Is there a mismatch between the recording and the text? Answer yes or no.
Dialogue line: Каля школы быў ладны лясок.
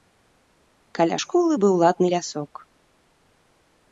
no